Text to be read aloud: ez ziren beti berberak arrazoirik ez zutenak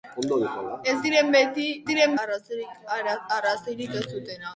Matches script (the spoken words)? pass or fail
fail